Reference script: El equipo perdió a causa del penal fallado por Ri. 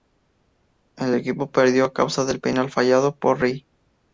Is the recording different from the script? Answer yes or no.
no